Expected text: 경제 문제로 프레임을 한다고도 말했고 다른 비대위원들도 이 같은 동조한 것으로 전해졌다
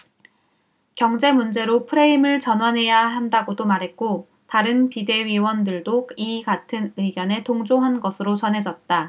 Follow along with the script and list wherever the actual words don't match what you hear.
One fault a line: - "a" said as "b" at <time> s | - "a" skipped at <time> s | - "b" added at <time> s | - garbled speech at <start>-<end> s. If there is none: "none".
- "전환해야" added at 2.4 s
- "의견에" added at 7.0 s